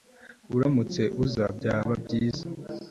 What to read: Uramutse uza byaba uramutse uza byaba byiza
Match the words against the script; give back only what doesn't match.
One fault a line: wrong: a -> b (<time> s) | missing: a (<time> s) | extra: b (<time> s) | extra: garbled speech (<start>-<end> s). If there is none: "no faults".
missing: uramutse uza byaba (1.9 s)